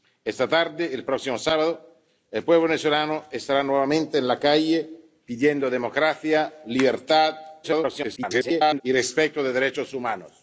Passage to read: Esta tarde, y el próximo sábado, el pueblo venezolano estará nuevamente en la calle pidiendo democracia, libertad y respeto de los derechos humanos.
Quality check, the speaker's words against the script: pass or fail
fail